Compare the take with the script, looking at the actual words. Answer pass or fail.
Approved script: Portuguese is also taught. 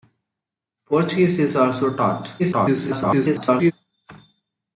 fail